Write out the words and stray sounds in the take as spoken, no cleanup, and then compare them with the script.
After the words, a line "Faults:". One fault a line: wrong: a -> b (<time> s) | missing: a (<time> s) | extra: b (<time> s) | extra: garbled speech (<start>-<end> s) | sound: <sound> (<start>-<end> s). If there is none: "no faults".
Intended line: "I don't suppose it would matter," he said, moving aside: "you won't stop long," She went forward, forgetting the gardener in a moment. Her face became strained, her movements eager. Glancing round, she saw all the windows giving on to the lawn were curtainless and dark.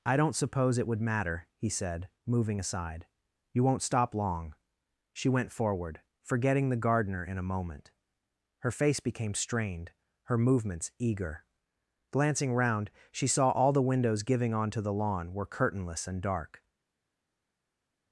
"I don't suppose it would matter," he said, moving aside: "you won't stop long," She went forward, forgetting the gardener in a moment. Her face became strained, her movements eager. Glancing round, she saw all the windows giving on to the lawn were curtainless and dark.
Faults:
no faults